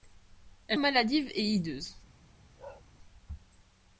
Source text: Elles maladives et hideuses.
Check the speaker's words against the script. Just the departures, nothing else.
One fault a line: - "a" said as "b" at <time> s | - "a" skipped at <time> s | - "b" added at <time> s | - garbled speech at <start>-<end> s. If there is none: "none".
none